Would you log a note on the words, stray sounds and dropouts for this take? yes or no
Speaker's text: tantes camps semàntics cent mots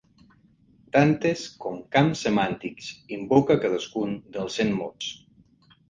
yes